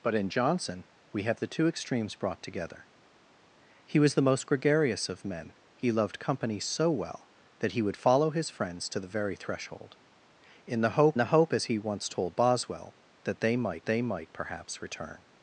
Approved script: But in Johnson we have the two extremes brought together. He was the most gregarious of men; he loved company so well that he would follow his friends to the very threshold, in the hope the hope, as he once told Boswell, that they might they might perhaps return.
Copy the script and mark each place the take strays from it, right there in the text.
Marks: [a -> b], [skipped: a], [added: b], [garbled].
But in Johnson we have the two extremes brought together. He was the most gregarious of men; he loved company so well that he would follow his friends to the very threshold, in the hope the hope, as he once told Boswell, that they might they might perhaps return.